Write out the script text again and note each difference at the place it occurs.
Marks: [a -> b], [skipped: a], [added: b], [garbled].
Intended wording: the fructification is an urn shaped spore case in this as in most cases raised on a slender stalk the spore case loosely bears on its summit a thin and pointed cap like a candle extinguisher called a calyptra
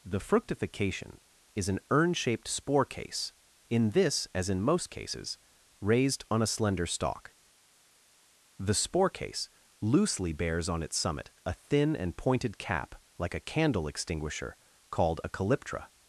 the fructification is an urn shaped spore case in this as in most cases raised on a slender stalk the spore case loosely bears on its summit a thin and pointed cap like a candle extinguisher called a calyptra